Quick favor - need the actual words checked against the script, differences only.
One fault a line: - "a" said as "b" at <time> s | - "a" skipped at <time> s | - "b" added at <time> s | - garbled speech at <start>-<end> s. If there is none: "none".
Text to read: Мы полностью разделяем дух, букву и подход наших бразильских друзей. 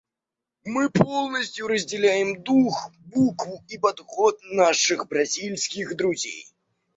none